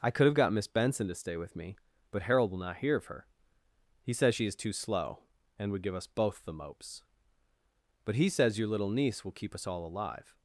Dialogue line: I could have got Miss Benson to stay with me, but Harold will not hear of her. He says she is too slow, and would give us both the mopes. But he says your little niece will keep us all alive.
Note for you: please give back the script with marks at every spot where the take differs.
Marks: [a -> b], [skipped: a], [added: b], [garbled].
I could have got Miss Benson to stay with me, but Harold will not hear of her. He says she is too slow, and would give us both the mopes. But he says your little niece will keep us all alive.